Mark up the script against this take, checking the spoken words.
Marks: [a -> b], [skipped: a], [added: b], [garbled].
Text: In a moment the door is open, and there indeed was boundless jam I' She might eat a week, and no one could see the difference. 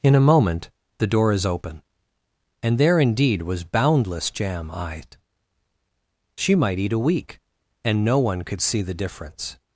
In a moment the door is open, and there indeed was boundless jam I' She might eat a week, and no one could see the difference.